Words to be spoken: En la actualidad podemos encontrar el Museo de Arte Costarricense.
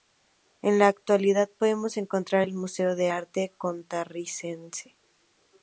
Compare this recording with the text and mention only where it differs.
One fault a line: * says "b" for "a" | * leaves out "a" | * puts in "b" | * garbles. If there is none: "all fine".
all fine